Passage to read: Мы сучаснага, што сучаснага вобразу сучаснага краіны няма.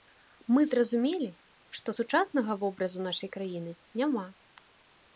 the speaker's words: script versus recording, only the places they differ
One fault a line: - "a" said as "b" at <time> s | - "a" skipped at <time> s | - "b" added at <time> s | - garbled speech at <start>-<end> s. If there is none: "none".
- "сучаснага" said as "зразумелі" at 0.7 s
- "сучаснага" said as "нашай" at 3.1 s